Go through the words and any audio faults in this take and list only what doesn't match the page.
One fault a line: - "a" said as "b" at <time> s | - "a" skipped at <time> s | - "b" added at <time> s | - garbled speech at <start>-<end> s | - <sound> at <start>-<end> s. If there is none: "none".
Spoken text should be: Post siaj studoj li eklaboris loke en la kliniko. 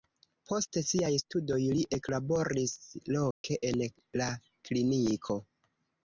- dropout at 3.3-3.4 s